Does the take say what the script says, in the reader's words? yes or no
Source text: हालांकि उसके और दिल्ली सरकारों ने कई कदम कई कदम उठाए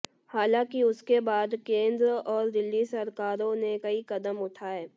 no